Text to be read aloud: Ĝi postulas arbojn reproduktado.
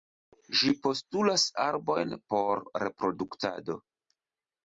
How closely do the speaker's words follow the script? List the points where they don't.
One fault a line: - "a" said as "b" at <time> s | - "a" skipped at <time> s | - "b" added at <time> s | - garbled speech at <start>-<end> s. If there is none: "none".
- "por" added at 2.3 s